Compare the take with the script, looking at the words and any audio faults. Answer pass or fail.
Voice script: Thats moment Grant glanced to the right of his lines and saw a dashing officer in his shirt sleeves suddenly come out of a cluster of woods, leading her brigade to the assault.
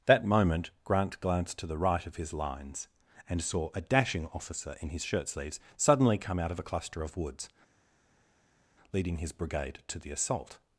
fail